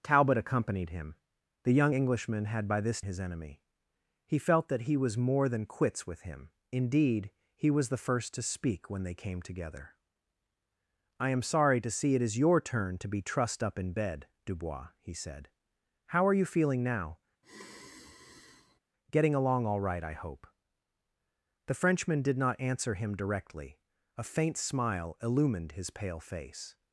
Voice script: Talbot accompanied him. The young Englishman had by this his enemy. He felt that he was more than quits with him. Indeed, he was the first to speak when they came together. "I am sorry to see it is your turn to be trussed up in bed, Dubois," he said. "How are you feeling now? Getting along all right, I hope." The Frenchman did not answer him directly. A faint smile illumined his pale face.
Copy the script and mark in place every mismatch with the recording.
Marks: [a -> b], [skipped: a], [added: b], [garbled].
Talbot accompanied him. The young Englishman had by this his enemy. He felt that he was more than quits with him. Indeed, he was the first to speak when they came together. "I am sorry to see it is your turn to be trussed up in bed, Dubois," he said. "How are you feeling now? Getting along all right, I hope." The Frenchman did not answer him directly. A faint smile illumined his pale face.